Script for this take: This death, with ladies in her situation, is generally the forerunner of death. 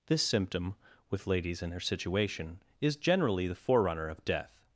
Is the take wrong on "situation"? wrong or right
right